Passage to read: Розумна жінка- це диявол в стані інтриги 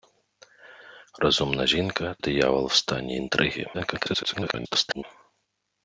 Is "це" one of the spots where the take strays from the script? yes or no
yes